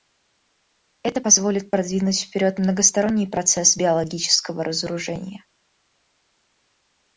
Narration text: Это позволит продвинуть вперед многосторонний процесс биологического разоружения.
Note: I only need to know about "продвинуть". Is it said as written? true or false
true